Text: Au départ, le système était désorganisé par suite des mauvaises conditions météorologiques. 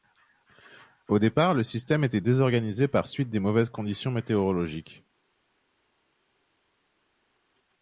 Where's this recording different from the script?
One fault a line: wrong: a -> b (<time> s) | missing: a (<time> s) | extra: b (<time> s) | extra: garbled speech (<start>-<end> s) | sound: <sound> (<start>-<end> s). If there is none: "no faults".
no faults